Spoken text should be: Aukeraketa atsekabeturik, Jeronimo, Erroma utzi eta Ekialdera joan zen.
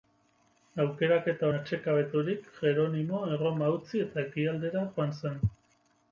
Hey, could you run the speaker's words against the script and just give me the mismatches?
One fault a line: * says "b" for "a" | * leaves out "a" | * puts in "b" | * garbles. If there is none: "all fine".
all fine